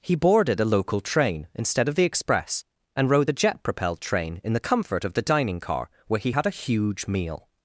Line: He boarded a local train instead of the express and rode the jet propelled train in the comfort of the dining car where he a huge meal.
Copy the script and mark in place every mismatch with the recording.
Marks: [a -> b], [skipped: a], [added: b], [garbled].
He boarded a local train instead of the express and rode the jet propelled train in the comfort of the dining car where he [added: had] a huge meal.